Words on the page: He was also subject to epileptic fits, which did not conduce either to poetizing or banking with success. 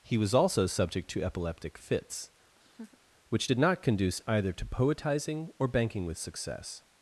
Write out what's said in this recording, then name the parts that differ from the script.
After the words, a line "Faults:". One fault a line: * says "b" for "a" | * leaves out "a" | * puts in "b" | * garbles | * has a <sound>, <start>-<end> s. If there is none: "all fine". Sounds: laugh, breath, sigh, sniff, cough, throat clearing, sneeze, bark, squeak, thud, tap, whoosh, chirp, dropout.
He was also subject to epileptic fits, which did not conduce either to poetizing or banking with success.
Faults:
* has a laugh, 2.6-3.0 s